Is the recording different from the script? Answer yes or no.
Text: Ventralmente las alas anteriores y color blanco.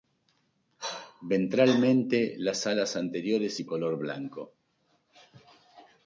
no